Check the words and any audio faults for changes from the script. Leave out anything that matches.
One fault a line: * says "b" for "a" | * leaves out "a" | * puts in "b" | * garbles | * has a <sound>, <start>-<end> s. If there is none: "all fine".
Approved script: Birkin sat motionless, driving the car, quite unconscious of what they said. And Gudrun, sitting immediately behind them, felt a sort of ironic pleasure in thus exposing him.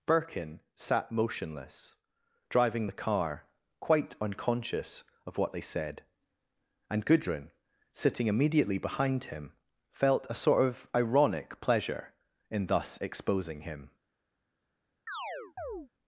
* says "him" for "them"
* has a chirp, 15.1-15.9 s